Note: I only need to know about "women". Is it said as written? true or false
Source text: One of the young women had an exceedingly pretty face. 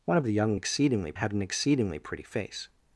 false